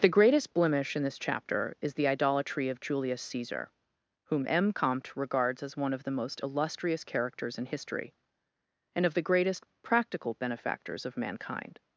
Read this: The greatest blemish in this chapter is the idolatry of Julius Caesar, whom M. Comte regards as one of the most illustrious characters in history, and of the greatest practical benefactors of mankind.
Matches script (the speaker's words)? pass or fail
pass